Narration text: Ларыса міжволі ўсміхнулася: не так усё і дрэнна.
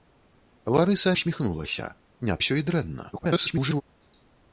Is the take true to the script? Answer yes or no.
no